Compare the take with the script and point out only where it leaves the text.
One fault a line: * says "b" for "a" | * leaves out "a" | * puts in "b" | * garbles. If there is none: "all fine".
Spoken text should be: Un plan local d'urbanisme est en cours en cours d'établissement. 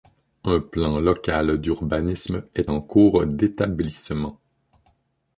* leaves out "en cours"